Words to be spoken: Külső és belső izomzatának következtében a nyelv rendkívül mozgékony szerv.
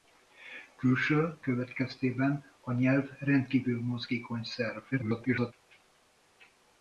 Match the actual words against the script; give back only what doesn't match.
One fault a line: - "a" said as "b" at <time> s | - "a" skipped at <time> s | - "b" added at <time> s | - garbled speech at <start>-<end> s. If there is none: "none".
- "és belső izomzatának" skipped at 1.4 s
- garbled speech at 4.9-5.5 s